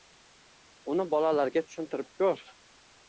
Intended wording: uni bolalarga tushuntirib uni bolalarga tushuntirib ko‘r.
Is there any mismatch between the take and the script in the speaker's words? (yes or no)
yes